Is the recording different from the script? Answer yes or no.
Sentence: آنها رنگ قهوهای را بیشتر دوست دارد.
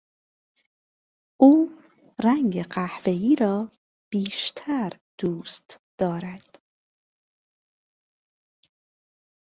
yes